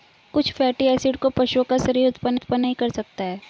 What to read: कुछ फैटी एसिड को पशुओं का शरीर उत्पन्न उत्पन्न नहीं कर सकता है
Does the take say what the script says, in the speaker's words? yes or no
yes